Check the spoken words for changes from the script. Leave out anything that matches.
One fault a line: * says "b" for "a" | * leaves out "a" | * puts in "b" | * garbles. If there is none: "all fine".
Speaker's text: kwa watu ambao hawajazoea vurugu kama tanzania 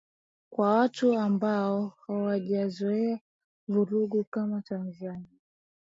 all fine